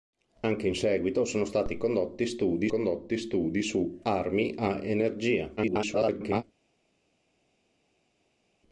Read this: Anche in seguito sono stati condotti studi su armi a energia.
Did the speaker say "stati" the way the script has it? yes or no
yes